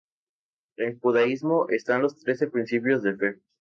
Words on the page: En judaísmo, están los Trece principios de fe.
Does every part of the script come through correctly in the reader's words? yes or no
yes